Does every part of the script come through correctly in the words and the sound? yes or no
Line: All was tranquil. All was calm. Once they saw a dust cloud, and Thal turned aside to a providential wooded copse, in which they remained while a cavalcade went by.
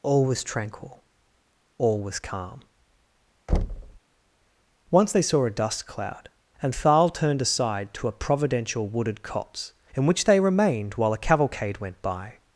no